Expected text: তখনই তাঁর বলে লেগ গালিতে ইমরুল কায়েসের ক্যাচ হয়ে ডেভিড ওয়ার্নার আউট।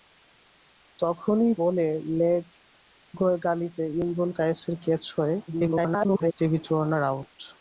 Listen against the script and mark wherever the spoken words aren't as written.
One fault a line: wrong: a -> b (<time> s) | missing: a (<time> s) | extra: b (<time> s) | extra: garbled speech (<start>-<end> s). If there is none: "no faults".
missing: তাঁর (1.5 s)
extra: garbled speech (5.5-6.3 s)